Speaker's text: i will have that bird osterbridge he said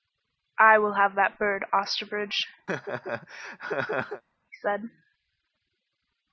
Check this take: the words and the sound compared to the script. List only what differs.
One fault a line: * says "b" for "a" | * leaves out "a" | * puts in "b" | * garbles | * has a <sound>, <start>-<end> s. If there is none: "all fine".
* has a laugh, 2.7-4.2 s